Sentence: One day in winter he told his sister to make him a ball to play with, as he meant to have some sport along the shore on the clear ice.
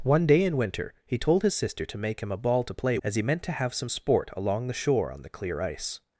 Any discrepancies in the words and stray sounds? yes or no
yes